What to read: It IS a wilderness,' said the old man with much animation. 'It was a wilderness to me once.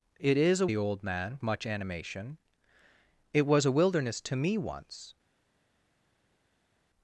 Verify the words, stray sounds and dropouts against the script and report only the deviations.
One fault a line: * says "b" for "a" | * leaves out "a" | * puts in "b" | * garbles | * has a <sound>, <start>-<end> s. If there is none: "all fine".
* leaves out "wilderness said"
* leaves out "with"